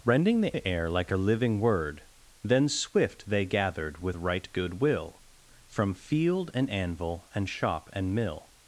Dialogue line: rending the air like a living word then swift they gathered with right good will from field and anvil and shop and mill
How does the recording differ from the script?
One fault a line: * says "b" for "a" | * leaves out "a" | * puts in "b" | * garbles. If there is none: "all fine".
* puts in "the"